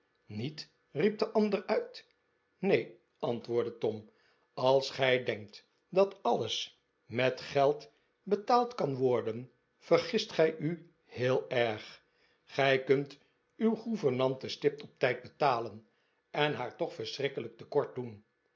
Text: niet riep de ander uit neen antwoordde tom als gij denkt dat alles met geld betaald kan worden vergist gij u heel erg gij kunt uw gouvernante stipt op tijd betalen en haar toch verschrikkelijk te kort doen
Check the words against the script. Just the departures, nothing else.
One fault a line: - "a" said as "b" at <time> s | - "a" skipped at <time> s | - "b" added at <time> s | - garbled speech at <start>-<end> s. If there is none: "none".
none